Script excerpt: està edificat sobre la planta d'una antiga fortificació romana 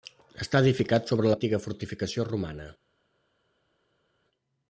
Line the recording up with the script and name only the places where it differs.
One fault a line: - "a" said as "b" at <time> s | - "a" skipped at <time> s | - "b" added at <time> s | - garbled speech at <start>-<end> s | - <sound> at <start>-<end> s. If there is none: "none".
- "planta d'una" skipped at 1.3 s